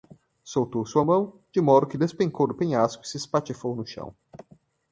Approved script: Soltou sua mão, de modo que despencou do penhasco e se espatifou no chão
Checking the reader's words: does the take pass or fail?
pass